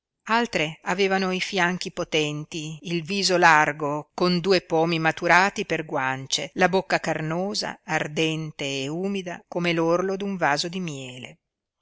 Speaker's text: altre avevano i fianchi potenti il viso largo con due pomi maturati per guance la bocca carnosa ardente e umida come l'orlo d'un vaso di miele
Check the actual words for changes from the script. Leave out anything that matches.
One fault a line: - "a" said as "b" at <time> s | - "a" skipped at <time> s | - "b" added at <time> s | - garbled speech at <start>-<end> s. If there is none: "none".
none